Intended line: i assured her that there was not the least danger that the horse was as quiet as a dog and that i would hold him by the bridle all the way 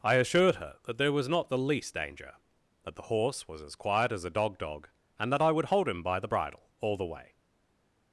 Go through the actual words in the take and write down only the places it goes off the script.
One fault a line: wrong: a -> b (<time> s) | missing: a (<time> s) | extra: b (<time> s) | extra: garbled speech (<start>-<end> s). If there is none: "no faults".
extra: dog (4.6 s)